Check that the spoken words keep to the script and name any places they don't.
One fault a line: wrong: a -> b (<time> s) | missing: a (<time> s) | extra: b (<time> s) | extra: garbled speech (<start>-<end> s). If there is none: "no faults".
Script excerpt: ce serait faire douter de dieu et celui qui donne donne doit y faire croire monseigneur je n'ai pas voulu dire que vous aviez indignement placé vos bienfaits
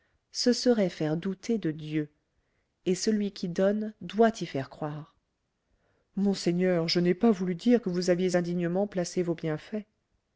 missing: donne (3.9 s)